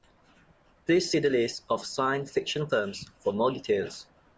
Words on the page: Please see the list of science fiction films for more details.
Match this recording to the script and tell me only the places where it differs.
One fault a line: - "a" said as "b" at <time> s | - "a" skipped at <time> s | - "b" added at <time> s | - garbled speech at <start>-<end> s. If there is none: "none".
none